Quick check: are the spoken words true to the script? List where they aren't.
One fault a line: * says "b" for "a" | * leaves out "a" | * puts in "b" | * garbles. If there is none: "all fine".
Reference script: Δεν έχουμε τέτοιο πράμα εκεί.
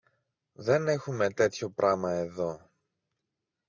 * says "εδώ" for "εκεί"